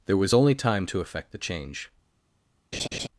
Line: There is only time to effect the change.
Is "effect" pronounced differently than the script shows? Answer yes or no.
no